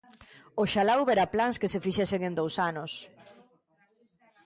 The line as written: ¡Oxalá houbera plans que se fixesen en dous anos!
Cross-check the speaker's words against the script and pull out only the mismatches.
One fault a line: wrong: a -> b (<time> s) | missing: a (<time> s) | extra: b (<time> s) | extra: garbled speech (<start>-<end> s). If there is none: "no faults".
no faults